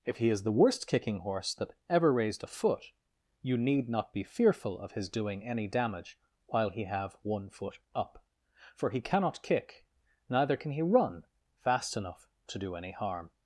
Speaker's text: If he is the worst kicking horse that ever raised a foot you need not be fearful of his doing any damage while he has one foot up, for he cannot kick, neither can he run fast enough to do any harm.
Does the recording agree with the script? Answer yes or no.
no